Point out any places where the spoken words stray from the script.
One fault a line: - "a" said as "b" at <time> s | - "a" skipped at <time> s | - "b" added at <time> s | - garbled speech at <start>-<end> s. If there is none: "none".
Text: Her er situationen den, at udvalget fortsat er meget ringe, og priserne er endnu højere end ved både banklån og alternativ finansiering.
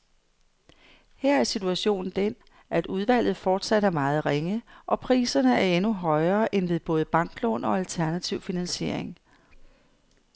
none